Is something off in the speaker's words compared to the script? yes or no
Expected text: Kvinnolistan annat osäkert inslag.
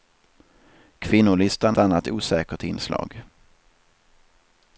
no